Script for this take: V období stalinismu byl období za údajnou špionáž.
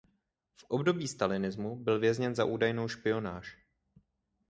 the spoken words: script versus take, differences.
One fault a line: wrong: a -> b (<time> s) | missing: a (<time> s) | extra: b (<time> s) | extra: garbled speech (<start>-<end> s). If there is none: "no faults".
wrong: období -> vězněn (2.0 s)